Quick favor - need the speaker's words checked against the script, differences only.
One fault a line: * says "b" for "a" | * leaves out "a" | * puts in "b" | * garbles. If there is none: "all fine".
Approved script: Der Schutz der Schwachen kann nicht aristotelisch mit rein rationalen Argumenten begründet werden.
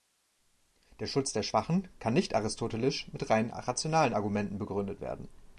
all fine